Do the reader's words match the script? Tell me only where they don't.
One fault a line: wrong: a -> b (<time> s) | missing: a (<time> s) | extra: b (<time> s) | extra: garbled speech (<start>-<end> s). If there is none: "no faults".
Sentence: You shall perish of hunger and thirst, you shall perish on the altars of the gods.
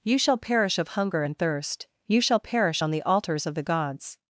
no faults